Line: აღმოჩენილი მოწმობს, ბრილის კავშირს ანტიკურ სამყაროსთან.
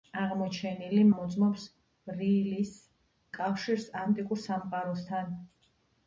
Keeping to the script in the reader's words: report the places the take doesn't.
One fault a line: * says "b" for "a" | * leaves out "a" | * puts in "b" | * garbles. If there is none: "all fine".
all fine